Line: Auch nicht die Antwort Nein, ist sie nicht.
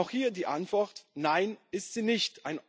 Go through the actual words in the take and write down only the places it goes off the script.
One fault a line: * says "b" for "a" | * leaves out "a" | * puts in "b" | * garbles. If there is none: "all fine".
* says "hier" for "nicht"